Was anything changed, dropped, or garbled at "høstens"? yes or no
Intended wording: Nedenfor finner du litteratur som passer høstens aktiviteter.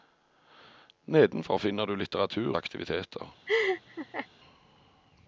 yes